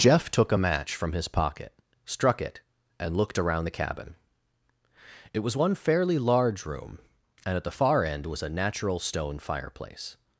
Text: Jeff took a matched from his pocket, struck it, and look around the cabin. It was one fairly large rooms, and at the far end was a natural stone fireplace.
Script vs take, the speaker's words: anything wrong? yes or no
yes